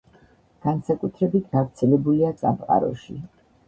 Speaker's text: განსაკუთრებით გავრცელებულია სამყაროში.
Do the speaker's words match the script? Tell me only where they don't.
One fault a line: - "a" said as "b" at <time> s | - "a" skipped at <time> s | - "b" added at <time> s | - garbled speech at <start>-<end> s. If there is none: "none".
none